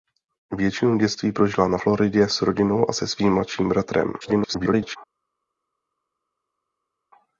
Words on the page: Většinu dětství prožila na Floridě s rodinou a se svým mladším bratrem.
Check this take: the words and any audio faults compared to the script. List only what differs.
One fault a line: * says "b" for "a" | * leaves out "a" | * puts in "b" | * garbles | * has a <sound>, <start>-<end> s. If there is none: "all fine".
* garbles